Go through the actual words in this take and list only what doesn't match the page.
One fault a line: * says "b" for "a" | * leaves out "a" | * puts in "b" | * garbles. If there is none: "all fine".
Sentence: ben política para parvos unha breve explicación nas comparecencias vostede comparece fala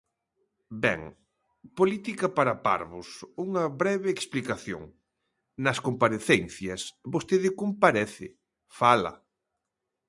all fine